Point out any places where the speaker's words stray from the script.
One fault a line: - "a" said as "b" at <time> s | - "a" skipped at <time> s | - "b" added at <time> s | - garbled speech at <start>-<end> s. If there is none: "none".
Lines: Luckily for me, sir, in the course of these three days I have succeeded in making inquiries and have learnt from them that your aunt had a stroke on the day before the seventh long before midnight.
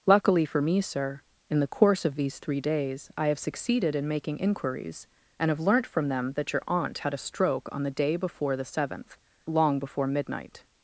none